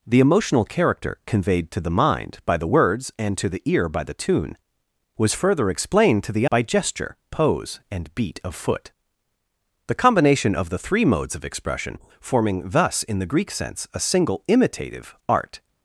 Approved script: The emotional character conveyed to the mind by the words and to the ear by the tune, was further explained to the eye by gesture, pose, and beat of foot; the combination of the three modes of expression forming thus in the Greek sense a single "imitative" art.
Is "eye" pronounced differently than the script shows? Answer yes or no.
yes